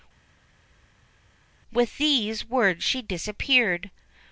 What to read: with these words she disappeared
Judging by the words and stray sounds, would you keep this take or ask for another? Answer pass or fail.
pass